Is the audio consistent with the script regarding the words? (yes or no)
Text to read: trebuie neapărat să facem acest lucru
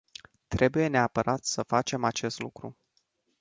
yes